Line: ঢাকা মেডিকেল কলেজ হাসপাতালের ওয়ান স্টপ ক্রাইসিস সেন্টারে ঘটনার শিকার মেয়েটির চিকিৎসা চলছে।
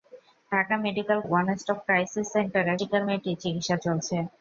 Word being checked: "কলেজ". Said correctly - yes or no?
no